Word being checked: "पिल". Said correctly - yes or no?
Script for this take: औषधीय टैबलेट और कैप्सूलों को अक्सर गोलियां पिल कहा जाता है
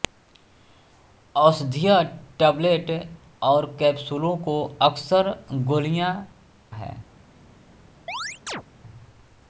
no